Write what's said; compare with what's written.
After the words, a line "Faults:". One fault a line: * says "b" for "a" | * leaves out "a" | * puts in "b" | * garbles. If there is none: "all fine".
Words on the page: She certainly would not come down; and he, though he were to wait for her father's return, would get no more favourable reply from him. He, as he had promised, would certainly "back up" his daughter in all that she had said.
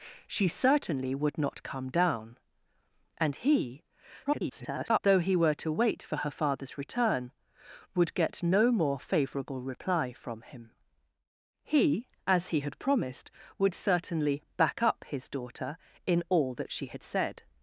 She certainly would not come down; and he, [garbled] though he were to wait for her father's return, would get no more favourable reply from him. He, as he had promised, would certainly "back up" his daughter in all that she had said.
Faults:
* garbles